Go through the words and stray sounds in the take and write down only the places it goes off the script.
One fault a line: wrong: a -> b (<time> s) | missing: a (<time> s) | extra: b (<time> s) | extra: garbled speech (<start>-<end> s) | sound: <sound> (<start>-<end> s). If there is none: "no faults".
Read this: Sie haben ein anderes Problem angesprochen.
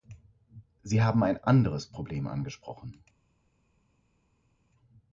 no faults